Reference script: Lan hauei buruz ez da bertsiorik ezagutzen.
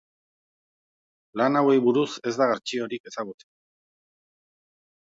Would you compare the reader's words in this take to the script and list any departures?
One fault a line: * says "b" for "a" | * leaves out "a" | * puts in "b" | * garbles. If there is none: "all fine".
all fine